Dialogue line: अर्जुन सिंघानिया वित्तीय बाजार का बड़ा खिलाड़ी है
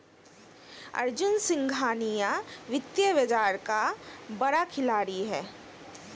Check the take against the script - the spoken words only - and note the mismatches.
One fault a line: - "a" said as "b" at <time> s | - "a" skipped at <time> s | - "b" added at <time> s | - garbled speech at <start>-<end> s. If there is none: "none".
none